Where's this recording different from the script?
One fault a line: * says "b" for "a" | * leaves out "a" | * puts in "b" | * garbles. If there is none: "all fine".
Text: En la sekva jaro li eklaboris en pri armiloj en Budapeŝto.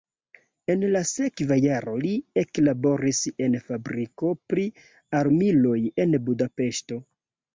* puts in "fabriko"